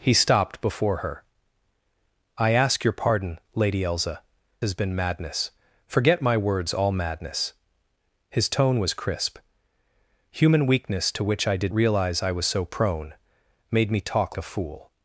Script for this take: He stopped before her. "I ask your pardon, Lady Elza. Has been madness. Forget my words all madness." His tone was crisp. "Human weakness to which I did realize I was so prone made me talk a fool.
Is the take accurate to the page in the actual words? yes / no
yes